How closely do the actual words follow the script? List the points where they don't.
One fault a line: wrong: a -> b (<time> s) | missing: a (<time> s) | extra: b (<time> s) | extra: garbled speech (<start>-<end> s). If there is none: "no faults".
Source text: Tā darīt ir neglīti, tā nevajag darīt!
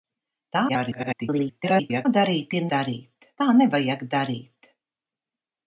extra: garbled speech (0.7-2.1 s)
wrong: neglīti -> darīt (2.7 s)